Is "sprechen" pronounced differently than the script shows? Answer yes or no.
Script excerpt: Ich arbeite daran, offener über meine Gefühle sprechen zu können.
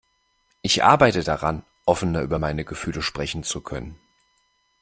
no